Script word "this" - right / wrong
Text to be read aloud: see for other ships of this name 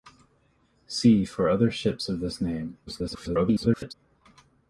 right